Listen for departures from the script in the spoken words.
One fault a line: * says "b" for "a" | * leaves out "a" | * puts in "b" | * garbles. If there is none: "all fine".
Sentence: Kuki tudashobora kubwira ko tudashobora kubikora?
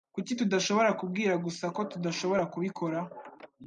* puts in "gusa"